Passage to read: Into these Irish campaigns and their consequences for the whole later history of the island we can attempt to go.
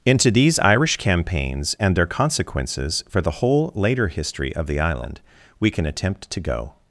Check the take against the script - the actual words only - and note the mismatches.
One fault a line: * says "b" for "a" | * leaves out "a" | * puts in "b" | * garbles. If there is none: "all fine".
all fine